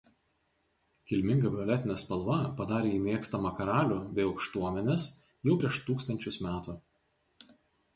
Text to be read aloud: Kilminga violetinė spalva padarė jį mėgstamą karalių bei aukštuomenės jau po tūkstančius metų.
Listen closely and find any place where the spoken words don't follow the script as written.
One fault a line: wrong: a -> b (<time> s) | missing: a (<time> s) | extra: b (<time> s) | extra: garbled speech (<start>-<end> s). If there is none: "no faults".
wrong: po -> prieš (5.6 s)